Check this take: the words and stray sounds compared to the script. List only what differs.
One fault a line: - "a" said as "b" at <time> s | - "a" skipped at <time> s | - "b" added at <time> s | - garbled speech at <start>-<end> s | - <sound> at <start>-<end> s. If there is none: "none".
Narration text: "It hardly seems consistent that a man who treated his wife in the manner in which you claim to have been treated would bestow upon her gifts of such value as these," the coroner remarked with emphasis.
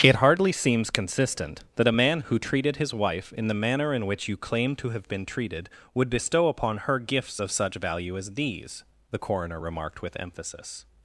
none